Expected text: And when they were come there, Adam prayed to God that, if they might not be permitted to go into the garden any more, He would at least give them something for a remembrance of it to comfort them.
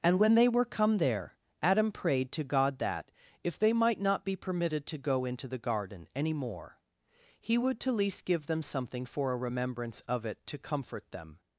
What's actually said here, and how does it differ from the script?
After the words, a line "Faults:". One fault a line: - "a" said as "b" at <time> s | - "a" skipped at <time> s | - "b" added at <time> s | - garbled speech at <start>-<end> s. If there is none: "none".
And when they were come there, Adam prayed to God that, if they might not be permitted to go into the garden any more, He would to least give them something for a remembrance of it to comfort them.
Faults:
- "at" said as "to" at 7.8 s